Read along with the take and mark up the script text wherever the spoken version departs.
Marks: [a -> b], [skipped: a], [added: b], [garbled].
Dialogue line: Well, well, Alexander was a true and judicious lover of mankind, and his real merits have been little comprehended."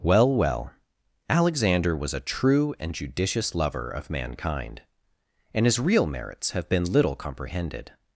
Well, well, Alexander was a true and judicious lover of mankind, and his real merits have been little comprehended."